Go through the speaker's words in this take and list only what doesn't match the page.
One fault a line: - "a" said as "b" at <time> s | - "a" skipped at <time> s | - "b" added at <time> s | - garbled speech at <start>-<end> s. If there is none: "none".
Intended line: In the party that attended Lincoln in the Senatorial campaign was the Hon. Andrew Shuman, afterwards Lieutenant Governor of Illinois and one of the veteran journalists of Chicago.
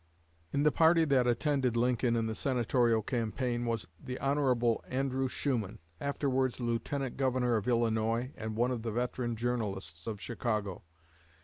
none